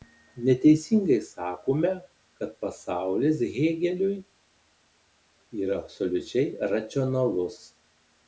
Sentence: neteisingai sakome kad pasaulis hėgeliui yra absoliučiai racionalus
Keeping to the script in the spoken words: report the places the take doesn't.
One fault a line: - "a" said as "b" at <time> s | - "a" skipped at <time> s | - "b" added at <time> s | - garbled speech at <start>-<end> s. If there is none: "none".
none